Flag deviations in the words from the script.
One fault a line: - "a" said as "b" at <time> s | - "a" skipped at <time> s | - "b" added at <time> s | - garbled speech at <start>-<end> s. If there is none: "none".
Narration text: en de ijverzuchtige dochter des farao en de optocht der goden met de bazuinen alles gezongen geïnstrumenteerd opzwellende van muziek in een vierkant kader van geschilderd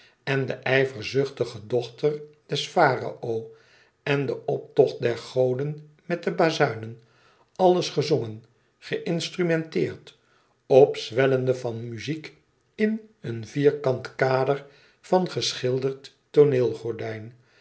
none